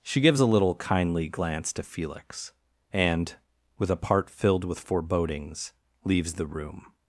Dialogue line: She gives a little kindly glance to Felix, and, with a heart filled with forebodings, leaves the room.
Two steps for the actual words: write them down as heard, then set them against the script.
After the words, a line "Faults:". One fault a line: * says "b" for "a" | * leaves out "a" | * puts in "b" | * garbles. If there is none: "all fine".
She gives a little kindly glance to Felix, and, with a part filled with forebodings, leaves the room.
Faults:
* says "part" for "heart"